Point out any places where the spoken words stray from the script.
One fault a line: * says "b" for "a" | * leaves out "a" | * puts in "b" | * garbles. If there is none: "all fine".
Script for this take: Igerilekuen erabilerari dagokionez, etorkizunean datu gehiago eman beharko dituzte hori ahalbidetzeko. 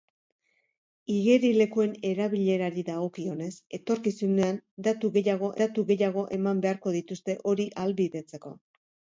* puts in "datu gehiago"